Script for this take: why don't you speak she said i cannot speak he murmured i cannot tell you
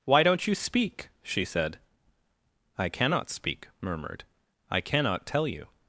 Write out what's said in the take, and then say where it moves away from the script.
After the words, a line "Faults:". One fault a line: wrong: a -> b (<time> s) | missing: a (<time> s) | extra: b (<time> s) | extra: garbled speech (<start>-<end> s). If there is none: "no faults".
why don't you speak she said i cannot speak murmured i cannot tell you
Faults:
missing: he (3.7 s)